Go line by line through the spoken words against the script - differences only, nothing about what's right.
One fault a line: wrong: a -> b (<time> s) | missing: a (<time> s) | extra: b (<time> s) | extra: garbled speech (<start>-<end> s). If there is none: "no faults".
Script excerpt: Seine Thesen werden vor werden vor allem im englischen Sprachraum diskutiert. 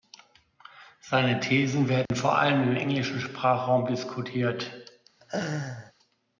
missing: werden vor (2.4 s)